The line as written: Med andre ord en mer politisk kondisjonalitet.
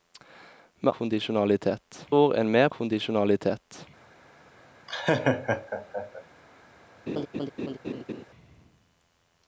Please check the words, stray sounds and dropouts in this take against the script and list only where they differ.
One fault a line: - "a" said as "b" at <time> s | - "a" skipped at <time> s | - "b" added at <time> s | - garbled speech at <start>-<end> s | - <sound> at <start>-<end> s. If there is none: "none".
- "andre" said as "kondisjonalitet" at 0.9 s
- "politisk" skipped at 2.7 s
- laugh at 4.9-6.2 s
- laugh at 7.1-8.2 s